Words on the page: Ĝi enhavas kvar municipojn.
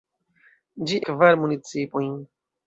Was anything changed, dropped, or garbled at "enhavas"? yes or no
yes